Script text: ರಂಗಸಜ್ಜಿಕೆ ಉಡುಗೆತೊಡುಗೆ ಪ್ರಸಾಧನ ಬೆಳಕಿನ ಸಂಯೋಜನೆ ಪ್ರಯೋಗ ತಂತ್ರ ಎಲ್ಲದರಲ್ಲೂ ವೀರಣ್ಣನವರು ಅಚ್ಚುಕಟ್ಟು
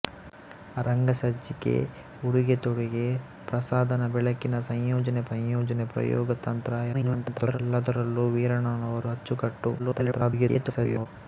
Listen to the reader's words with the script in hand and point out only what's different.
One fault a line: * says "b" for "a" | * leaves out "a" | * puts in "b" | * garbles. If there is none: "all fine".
* puts in "ಸಂಯೋಜನೆ"
* garbles
* garbles